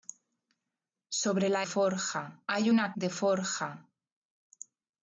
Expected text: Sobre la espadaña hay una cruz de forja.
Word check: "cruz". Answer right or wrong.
wrong